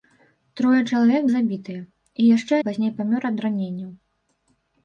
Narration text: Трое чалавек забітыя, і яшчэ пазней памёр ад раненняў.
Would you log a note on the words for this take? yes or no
no